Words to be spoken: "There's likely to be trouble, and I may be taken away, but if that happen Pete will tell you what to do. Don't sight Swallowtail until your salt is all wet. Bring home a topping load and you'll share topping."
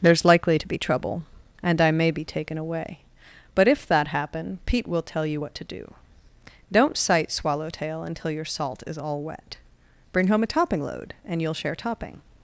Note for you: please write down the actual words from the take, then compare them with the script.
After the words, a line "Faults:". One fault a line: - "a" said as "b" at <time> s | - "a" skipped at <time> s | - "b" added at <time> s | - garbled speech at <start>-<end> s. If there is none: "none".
"There's likely to be trouble, and I may be taken away, but if that happen Pete will tell you what to do. Don't sight Swallowtail until your salt is all wet. Bring home a topping load and you'll share topping."
Faults:
none